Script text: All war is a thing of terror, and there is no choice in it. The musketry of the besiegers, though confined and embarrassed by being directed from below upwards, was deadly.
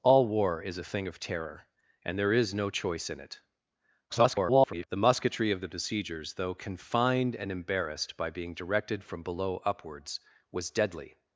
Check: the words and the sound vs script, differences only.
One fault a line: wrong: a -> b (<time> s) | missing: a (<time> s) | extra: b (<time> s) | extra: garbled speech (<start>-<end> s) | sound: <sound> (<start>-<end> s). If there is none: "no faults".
extra: garbled speech (4.1-4.9 s)